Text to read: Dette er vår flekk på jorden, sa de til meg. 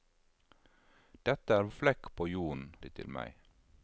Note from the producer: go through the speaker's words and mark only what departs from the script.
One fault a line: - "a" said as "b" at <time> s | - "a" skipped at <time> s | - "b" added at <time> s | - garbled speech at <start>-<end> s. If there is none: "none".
- "vår" skipped at 1.7 s
- "sa" skipped at 2.7 s